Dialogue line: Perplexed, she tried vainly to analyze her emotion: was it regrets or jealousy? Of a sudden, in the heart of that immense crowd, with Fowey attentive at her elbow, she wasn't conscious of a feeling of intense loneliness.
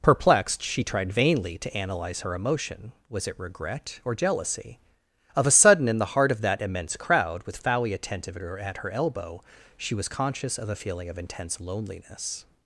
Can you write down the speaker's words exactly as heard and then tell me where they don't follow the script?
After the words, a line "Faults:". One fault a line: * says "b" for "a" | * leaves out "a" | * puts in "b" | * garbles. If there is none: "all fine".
Perplexed, she tried vainly to analyze her emotion: was it regret or jealousy? Of a sudden, in the heart of that immense crowd, with Fowey attentive at her elbow, she was conscious of a feeling of intense loneliness.
Faults:
* says "regret" for "regrets"
* says "was" for "wasn't"